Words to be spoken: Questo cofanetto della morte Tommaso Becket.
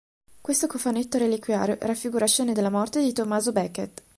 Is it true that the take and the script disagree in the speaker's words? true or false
true